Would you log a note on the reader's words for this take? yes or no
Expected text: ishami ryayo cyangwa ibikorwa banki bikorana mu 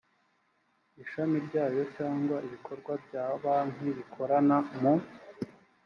yes